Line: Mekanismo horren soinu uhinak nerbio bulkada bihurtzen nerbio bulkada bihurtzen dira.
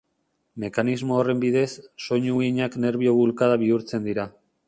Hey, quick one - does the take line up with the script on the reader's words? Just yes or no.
no